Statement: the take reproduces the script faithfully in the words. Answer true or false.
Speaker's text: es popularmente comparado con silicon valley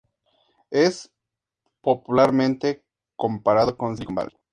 true